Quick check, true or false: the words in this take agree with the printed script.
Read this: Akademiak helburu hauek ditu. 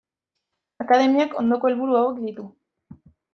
false